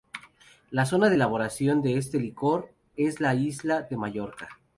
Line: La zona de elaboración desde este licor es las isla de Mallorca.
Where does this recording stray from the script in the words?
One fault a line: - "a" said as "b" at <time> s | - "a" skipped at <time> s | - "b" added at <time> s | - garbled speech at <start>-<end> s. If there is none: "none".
- "desde" said as "de" at 1.8 s
- "las" said as "la" at 3.2 s